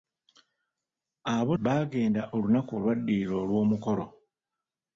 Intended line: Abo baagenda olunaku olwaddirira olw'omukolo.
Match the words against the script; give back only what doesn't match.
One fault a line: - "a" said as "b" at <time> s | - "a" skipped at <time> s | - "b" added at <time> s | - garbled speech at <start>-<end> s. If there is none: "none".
none